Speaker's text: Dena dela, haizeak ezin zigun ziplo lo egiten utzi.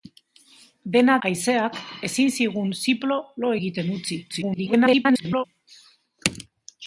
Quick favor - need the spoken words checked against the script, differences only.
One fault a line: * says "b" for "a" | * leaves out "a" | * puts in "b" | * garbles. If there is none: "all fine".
* leaves out "dela"
* garbles